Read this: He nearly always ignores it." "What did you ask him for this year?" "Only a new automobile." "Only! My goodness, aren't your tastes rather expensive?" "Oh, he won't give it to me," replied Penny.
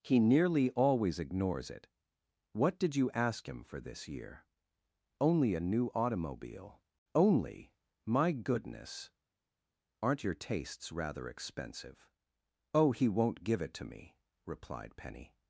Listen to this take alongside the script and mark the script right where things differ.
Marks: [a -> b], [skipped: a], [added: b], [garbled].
He nearly always ignores it." "What did you ask him for this year?" "Only a new automobile." "Only! My goodness, aren't your tastes rather expensive?" "Oh, he won't give it to me," replied Penny.